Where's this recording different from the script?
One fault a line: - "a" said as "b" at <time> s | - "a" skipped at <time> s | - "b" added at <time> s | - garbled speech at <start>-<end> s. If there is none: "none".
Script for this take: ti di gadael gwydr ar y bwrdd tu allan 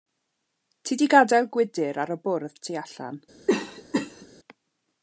none